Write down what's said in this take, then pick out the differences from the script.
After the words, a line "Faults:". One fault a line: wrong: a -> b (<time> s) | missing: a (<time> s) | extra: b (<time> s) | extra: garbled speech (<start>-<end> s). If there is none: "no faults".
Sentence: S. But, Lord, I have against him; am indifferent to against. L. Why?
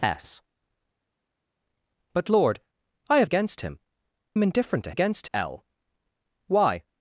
S. But, Lord, I have against him; am indifferent to against. L. Why?
Faults:
no faults